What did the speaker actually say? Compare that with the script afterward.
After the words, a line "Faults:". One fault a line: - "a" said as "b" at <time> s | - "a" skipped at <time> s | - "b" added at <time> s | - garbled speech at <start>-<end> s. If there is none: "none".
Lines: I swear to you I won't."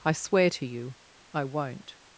I swear to you I won't."
Faults:
none